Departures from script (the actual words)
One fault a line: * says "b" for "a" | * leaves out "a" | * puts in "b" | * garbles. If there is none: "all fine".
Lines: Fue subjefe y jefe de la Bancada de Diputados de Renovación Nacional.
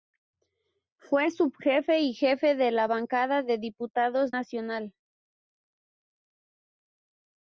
* leaves out "de Renovación"